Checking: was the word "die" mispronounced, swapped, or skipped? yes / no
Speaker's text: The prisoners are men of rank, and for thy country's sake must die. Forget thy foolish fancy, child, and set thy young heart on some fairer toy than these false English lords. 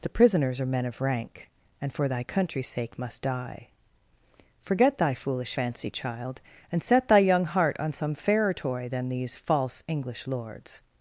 no